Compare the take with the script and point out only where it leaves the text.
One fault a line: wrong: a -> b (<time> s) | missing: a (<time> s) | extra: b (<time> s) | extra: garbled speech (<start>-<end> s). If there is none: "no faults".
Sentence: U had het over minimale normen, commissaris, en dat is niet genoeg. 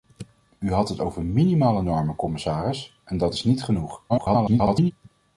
extra: garbled speech (4.1-4.9 s)